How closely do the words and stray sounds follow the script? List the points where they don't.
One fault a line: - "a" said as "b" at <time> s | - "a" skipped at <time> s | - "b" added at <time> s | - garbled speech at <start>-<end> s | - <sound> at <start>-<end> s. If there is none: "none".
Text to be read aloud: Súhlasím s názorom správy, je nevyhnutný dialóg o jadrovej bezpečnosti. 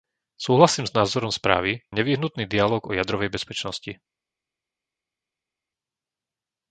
none